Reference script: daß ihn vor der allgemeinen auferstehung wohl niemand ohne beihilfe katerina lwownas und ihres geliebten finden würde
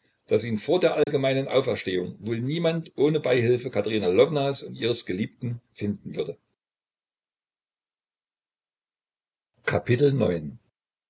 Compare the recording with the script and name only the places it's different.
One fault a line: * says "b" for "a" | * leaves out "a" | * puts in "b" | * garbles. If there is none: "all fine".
all fine